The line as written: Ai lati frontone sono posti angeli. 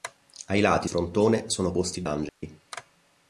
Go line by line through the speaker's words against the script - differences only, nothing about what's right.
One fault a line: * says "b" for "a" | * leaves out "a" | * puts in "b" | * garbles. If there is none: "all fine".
all fine